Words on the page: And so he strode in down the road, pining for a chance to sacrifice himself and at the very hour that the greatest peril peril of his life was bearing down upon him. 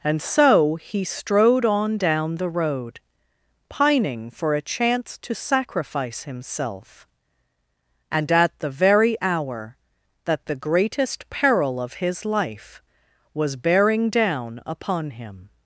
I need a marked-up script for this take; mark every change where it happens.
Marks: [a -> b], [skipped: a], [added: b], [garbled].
And so he strode [in -> on] down the road, pining for a chance to sacrifice himself and at the very hour that the greatest peril [skipped: peril] of his life was bearing down upon him.